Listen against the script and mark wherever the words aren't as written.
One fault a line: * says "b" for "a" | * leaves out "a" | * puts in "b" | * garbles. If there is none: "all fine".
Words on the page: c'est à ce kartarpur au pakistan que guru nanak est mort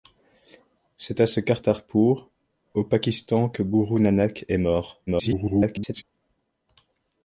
* garbles